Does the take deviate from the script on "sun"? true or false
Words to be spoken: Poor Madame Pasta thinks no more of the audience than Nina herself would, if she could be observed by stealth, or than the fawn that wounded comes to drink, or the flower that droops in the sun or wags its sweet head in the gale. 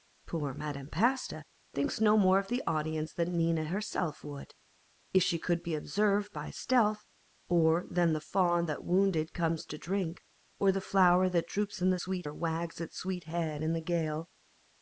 true